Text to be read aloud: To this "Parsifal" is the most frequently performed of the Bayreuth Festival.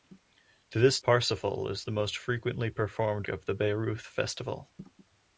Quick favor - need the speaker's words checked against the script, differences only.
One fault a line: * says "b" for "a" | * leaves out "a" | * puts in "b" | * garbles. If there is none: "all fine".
all fine